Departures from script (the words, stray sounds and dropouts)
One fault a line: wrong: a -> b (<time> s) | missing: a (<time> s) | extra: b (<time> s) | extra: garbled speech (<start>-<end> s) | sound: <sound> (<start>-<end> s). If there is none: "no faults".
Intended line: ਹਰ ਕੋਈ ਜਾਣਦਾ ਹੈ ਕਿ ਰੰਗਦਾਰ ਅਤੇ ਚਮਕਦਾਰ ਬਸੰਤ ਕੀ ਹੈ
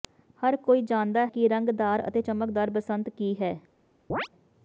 missing: ਹੈ (1.2 s)
sound: chirp (4.1-4.3 s)